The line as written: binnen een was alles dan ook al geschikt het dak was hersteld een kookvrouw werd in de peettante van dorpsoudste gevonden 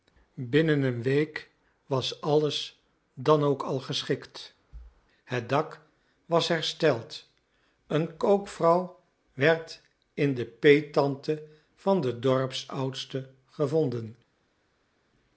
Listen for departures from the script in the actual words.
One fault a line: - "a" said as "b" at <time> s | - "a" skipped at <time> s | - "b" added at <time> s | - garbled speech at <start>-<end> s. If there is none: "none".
- "week" added at 1.0 s
- "den" added at 12.0 s